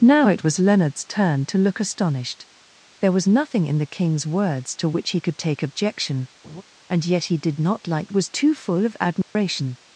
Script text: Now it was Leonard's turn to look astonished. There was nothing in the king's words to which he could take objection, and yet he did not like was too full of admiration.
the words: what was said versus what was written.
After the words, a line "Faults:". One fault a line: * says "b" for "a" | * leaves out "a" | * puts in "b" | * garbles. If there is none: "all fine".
Now it was Leonard's turn to look astonished. There was nothing in the king's words to which he could take objection, and yet he did not like was too full of admiration.
Faults:
all fine